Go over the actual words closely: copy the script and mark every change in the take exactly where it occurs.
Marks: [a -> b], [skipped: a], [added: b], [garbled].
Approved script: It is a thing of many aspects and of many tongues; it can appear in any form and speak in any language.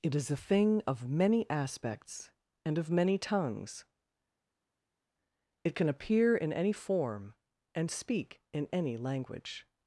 It is a thing of many aspects and of many tongues; it can appear in any form and speak in any language.